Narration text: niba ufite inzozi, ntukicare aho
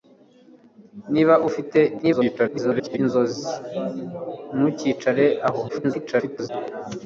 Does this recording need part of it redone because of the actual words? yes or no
yes